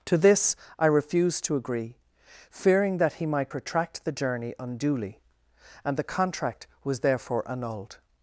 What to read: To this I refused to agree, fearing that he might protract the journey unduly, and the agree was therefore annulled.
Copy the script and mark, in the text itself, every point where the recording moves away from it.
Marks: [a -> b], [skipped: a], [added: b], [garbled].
To this I refused to agree, fearing that he might protract the journey unduly, and the [agree -> contract] was therefore annulled.